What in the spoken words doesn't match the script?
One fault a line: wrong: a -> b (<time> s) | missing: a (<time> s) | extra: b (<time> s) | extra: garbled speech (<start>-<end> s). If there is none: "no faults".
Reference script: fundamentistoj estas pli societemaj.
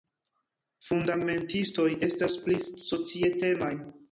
no faults